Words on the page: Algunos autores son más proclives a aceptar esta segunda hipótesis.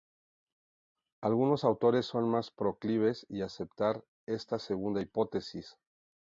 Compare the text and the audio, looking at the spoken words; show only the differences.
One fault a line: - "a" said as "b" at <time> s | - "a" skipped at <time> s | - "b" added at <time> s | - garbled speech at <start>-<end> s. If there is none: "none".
none